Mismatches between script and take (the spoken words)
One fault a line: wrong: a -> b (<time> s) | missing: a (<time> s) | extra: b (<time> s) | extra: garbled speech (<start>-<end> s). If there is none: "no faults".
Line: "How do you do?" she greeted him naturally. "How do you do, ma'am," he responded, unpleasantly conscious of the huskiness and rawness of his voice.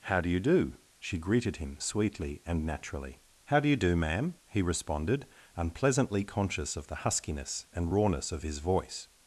extra: sweetly and (1.8 s)